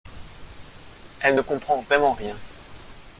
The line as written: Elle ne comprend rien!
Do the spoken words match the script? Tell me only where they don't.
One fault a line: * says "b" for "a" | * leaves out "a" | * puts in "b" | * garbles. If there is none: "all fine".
* puts in "vraiment"